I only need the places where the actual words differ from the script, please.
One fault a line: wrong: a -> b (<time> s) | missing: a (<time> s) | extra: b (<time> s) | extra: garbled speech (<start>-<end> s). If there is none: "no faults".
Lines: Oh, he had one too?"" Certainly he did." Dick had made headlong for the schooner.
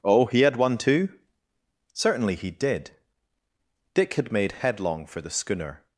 no faults